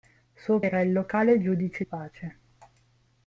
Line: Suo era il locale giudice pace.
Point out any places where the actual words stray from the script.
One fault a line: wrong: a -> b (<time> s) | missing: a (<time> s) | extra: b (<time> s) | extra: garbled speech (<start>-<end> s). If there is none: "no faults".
no faults